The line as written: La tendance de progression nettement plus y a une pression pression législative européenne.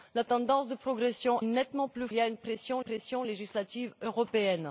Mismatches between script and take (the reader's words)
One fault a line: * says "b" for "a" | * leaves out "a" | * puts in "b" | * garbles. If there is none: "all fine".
all fine